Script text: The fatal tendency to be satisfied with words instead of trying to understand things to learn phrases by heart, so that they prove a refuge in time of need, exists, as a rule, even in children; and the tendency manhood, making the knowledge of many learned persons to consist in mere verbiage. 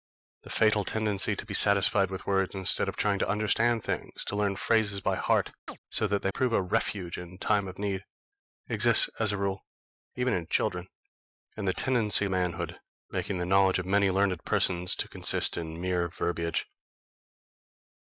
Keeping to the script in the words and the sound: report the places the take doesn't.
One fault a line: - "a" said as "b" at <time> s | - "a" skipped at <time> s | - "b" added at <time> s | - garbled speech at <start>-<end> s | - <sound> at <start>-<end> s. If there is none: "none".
- chirp at 5.7-5.8 s